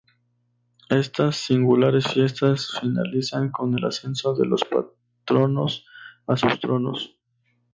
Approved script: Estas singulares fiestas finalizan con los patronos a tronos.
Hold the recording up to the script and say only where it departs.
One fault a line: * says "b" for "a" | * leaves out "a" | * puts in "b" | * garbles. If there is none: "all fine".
* puts in "el ascenso de"
* puts in "sus"